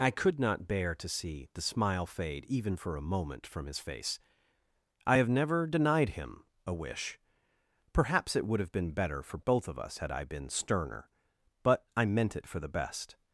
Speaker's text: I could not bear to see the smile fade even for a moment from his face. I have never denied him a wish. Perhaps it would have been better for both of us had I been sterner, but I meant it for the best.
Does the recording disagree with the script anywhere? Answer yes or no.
no